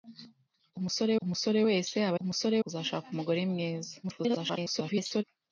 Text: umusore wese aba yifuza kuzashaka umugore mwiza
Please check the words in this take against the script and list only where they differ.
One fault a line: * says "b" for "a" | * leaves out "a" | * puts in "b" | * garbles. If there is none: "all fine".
* puts in "umusore"
* says "umusore" for "yifuza"
* garbles